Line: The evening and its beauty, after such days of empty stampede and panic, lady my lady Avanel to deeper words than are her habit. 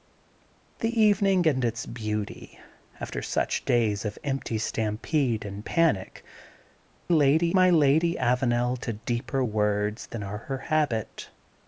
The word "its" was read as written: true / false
true